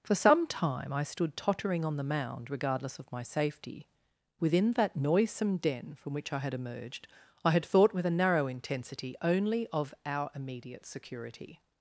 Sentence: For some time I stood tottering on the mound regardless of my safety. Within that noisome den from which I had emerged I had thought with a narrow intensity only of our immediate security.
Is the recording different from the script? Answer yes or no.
no